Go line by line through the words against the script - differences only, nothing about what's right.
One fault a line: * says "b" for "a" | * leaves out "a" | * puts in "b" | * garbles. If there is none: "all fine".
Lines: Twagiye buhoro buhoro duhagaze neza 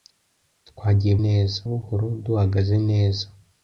* says "neza" for "buhoro"